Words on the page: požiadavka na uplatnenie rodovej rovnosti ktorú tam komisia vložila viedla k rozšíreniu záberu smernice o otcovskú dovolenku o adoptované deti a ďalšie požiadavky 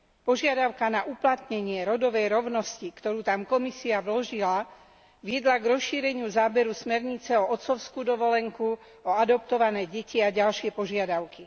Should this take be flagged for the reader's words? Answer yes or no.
no